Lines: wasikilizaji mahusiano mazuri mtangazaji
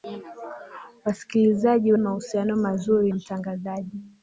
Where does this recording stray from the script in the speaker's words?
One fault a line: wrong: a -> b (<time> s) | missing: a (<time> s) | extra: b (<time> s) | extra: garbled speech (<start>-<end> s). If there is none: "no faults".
no faults